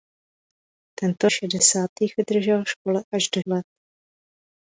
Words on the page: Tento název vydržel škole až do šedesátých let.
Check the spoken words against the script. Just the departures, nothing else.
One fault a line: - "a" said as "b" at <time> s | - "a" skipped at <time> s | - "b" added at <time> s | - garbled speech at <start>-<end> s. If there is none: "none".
- "název" said as "šedesátých" at 1.3 s
- "šedesátých" skipped at 3.4 s